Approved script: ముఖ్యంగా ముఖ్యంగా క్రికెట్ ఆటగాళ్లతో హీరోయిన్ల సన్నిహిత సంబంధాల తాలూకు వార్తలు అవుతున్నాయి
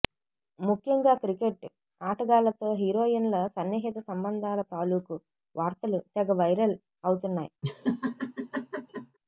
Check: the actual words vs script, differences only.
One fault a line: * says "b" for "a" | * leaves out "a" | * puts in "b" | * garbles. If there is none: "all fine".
* leaves out "ముఖ్యంగా"
* puts in "తెగ వైరల్"